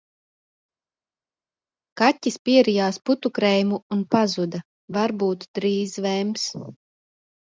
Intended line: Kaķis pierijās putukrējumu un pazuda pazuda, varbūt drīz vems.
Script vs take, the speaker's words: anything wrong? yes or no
yes